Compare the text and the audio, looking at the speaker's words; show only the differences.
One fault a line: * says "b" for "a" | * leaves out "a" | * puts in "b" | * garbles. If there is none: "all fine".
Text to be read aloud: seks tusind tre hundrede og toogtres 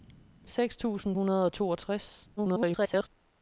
* leaves out "tre"
* garbles